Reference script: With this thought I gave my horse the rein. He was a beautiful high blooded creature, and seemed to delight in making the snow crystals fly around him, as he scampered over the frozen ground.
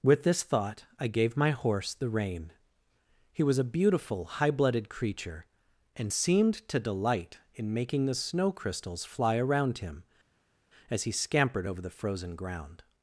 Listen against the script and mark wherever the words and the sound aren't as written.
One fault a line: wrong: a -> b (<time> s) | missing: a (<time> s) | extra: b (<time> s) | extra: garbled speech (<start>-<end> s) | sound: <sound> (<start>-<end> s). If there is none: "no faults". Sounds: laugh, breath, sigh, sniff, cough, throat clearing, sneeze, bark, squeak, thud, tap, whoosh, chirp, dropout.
no faults